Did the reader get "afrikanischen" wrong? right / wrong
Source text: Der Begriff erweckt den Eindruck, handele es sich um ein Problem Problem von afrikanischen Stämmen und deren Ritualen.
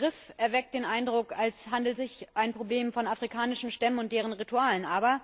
right